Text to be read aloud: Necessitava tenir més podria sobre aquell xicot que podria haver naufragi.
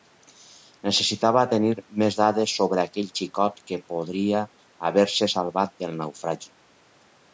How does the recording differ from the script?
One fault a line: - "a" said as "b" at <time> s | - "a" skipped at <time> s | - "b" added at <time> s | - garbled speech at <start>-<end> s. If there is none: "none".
- "podria" said as "dades" at 2.2 s
- "se salvat del" added at 5.2 s